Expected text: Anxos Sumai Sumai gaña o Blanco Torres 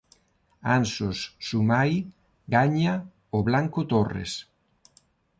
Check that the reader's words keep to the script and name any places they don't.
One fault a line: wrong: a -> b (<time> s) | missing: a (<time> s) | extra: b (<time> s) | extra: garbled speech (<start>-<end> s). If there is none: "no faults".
missing: Sumai (1.9 s)